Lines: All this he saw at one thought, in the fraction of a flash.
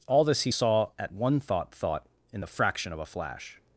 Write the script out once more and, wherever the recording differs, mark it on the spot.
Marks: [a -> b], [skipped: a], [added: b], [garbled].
All this he saw at one thought, [added: thought] in the fraction of a flash.